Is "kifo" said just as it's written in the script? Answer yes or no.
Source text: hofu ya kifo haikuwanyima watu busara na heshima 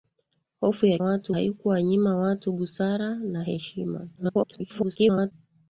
no